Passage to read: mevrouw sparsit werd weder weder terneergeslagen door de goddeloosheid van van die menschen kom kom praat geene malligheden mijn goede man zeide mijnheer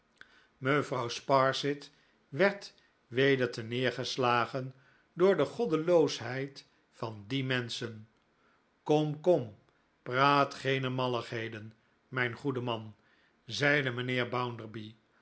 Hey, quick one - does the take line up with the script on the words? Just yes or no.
no